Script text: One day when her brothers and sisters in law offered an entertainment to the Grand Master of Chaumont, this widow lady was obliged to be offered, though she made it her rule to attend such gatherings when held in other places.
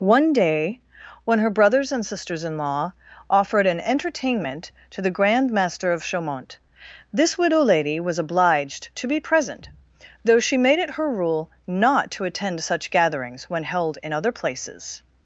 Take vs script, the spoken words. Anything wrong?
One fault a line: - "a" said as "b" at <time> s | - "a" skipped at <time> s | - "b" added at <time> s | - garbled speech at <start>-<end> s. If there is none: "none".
- "offered" said as "present" at 9.2 s
- "not" added at 11.7 s